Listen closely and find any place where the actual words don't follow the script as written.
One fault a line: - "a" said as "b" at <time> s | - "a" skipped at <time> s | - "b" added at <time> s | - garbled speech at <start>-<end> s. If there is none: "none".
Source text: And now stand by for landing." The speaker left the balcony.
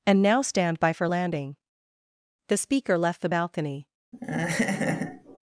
none